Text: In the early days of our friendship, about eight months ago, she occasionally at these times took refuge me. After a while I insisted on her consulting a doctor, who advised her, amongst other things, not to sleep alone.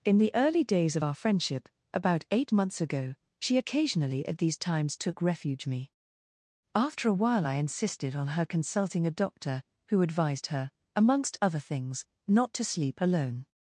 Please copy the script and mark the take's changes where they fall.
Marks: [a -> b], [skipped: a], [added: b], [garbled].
In the early days of our friendship, about eight months ago, she occasionally at these times took refuge me. After a while I insisted on her consulting a doctor, who advised her, amongst other things, not to sleep alone.